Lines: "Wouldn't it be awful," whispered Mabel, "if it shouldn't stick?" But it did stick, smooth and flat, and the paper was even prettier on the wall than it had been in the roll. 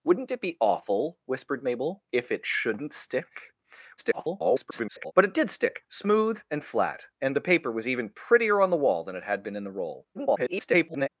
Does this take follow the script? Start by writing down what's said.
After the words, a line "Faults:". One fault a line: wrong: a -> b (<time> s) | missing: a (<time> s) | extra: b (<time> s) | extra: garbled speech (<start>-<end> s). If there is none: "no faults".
"Wouldn't it be awful," whispered Mabel, "if it shouldn't stick?" [garbled] But it did stick, smooth and flat, and the paper was even prettier on the wall than it had been in the roll. [garbled]
Faults:
extra: garbled speech (4.0-5.1 s)
extra: garbled speech (10.1-11.1 s)